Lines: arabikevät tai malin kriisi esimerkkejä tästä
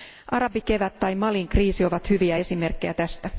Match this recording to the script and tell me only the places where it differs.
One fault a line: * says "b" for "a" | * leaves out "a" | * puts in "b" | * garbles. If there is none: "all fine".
* puts in "ovat hyviä"